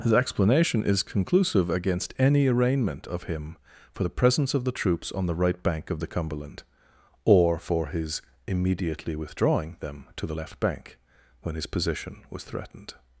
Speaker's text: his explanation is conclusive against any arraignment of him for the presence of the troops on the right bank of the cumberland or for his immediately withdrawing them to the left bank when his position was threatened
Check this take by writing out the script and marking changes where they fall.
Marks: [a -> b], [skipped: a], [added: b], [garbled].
his explanation is conclusive against any arraignment of him for the presence of the troops on the right bank of the cumberland or for his immediately withdrawing them to the left bank when his position was threatened